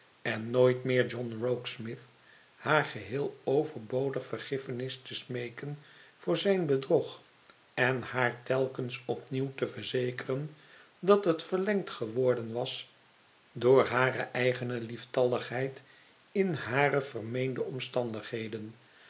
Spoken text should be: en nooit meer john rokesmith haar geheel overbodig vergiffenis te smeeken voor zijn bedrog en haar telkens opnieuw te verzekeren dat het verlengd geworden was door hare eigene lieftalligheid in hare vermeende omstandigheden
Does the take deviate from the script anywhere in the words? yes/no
no